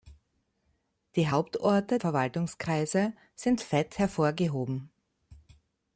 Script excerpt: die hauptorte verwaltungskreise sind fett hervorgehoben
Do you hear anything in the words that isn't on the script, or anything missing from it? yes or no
no